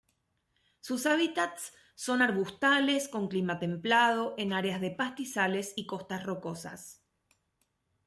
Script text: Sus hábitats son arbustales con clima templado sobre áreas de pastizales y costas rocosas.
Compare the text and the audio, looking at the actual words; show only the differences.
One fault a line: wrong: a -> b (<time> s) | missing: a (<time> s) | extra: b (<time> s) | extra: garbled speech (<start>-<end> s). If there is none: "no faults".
wrong: sobre -> en (4.4 s)